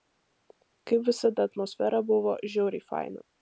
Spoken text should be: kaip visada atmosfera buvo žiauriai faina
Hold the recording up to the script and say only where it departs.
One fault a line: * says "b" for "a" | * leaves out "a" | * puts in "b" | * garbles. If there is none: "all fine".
all fine